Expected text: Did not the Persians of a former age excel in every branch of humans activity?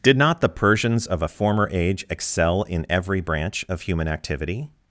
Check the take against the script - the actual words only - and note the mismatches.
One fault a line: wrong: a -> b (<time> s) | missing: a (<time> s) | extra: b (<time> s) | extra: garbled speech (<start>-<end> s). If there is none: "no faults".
wrong: humans -> human (3.8 s)